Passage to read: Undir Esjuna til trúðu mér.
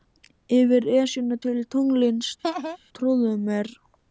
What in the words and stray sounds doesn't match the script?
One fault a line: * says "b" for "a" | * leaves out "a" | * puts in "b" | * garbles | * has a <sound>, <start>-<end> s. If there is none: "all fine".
* says "Yfir" for "Undir"
* puts in "tunglsins"
* has a laugh, 2.4-2.8 s